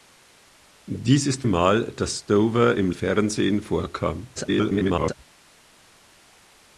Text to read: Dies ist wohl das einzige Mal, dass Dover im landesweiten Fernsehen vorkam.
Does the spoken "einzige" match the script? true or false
false